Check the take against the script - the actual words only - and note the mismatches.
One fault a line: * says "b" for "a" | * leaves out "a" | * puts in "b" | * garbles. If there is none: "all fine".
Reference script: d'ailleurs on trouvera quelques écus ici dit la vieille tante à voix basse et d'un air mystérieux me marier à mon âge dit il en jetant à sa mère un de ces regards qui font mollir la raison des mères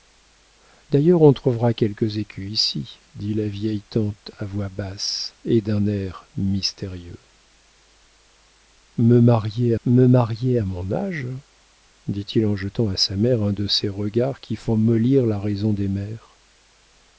* puts in "me marier"